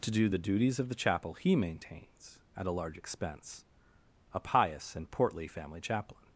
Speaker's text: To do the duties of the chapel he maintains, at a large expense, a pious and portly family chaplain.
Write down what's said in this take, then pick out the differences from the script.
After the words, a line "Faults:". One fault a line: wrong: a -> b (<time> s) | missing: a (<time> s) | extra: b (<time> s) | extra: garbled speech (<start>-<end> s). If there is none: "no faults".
To do the duties of the chapel he maintains, at a large expense, a pious and portly family chaplain.
Faults:
no faults